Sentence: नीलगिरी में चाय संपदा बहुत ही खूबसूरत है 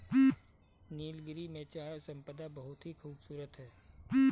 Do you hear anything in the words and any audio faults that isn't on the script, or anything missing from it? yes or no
no